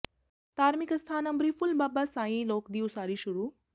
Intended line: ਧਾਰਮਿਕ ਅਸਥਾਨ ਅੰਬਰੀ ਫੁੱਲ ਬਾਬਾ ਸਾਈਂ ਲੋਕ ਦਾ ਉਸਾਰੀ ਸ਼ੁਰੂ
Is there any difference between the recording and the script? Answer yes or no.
yes